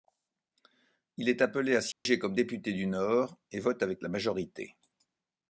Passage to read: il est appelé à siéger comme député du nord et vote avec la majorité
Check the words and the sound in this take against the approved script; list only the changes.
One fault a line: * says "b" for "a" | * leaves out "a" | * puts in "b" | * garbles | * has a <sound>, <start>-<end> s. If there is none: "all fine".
* has a dropout, 1.9-2.1 s